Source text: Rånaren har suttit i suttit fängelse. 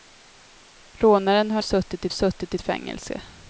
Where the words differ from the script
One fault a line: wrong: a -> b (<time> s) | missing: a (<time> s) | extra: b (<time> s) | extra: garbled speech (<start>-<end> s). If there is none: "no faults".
no faults